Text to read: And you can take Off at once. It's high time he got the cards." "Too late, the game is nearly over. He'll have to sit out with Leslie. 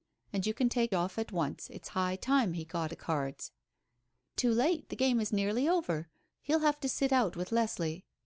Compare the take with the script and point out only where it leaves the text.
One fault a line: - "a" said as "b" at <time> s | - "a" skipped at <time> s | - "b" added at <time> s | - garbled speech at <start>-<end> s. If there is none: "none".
none